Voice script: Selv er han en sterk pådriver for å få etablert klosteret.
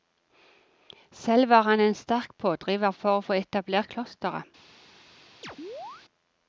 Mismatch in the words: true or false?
true